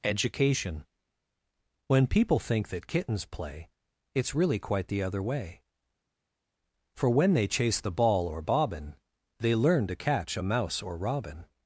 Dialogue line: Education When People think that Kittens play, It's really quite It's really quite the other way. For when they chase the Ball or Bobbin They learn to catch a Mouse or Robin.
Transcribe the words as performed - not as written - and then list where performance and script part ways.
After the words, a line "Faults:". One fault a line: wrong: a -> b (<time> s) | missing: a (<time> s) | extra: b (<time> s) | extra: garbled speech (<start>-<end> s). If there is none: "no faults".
Education When People think that Kittens play, It's really quite the other way. For when they chase the Ball or Bobbin They learn to catch a Mouse or Robin.
Faults:
missing: It's really quite (4.9 s)